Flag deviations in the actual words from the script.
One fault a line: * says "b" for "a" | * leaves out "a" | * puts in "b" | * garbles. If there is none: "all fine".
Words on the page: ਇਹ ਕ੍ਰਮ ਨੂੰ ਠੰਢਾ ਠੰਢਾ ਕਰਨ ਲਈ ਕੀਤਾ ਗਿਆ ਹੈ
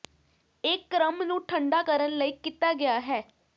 * leaves out "ਠੰਢਾ"